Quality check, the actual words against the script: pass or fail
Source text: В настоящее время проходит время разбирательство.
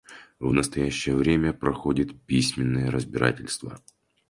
fail